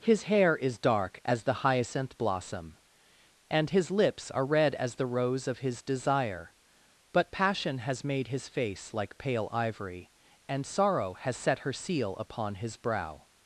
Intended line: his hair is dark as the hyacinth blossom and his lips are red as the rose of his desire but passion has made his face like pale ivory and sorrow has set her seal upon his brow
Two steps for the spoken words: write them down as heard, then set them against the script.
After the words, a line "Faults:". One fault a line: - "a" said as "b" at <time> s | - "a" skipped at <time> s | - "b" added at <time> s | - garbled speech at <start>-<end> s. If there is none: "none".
his hair is dark as the hyacinth blossom and his lips are red as the rose of his desire but passion has made his face like pale ivory and sorrow has set her seal upon his brow
Faults:
none